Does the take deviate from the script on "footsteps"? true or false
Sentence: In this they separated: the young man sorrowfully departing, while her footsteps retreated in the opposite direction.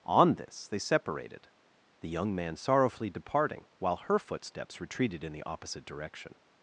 false